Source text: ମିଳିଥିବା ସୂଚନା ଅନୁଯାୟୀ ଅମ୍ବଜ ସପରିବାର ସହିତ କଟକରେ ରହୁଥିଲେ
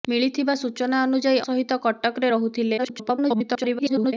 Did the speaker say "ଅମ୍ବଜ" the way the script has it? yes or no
no